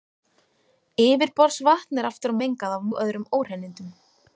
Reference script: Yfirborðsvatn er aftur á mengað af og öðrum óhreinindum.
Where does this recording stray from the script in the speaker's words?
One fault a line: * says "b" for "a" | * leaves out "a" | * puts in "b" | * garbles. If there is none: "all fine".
all fine